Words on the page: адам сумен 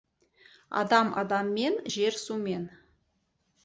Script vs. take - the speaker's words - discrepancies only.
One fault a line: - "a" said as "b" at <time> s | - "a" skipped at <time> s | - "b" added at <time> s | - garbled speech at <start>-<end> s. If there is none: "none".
- "адаммен жер" added at 1.2 s